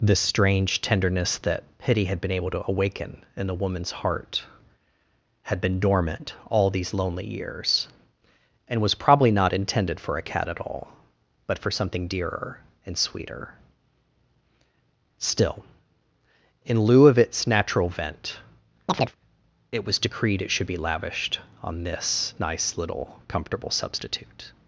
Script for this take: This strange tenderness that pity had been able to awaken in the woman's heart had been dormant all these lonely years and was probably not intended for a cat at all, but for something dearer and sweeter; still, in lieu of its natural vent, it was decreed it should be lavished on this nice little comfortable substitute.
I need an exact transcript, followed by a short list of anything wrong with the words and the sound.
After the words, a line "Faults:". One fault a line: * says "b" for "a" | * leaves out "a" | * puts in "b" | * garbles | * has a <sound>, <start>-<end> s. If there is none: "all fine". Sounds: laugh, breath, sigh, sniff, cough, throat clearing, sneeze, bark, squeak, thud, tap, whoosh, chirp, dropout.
This strange tenderness that pity had been able to awaken in the woman's heart had been dormant all these lonely years and was probably not intended for a cat at all, but for something dearer and sweeter; still, in lieu of its natural vent, it was decreed it should be lavished on this nice little comfortable substitute.
Faults:
* has a chirp, 18.9-19.2 s